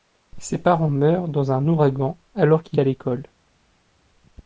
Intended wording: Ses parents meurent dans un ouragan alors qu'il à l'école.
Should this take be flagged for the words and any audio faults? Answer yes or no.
no